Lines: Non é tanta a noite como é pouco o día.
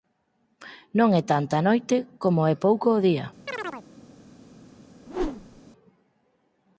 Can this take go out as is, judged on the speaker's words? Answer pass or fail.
pass